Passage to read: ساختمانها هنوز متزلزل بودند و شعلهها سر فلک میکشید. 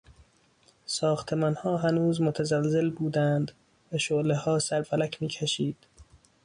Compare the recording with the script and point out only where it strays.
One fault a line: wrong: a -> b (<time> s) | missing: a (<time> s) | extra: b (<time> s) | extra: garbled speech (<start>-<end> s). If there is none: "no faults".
no faults